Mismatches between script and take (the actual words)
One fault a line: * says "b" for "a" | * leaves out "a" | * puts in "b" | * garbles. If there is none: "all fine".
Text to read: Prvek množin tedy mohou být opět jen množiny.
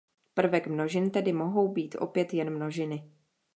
all fine